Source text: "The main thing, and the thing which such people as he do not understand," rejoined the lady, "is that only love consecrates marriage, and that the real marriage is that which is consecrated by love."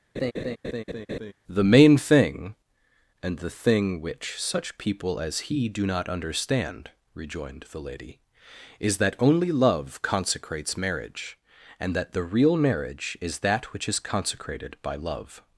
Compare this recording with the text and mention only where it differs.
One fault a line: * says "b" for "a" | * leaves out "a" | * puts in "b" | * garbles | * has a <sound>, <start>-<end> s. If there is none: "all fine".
* has a laugh, 0.2-1.3 s